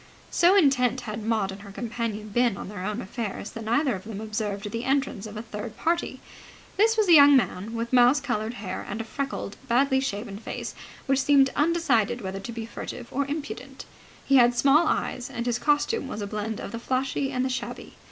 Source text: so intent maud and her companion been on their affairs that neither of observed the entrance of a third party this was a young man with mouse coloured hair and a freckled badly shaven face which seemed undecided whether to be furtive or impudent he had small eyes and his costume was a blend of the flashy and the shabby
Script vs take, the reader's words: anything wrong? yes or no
yes